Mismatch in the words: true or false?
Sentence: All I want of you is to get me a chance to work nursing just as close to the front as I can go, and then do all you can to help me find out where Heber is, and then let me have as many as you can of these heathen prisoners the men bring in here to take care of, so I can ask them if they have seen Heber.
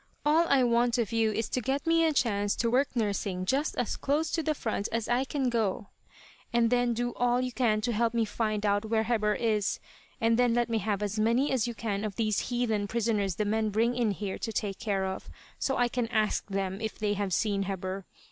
false